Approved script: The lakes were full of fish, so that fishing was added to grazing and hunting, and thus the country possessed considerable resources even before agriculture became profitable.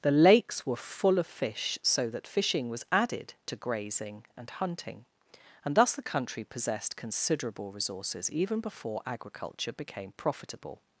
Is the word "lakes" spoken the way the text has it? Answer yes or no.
yes